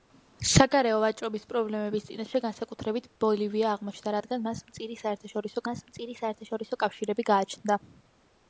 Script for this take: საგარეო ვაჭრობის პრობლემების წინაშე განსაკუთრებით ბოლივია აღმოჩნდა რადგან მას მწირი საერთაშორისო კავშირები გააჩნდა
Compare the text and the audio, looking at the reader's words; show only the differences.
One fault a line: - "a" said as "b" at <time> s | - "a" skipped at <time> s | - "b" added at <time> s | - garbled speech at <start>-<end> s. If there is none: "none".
- "მას მწირი საერთაშორისო" added at 5.7 s